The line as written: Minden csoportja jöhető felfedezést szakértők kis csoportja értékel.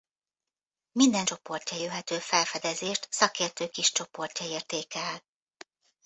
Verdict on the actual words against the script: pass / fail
pass